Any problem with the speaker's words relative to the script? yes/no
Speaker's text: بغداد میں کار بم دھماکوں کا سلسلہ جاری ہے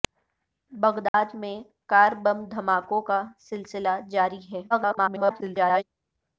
yes